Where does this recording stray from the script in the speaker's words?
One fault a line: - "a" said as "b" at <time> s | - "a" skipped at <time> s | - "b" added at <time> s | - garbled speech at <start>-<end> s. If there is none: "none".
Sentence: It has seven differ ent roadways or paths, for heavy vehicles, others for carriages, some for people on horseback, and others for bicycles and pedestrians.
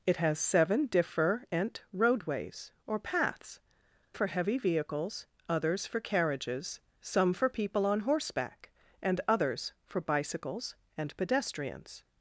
none